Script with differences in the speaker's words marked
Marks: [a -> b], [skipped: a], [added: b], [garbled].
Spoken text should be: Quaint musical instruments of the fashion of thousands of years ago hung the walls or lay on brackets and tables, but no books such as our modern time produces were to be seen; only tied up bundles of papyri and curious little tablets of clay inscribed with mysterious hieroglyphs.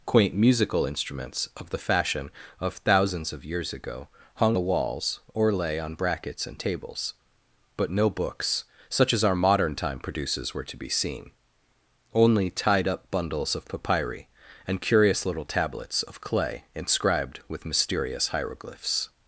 Quaint musical instruments of the fashion of thousands of years ago hung the walls or lay on brackets and tables, but no books such as our modern time produces were to be seen; only tied up bundles of papyri and curious little tablets of clay inscribed with mysterious hieroglyphs.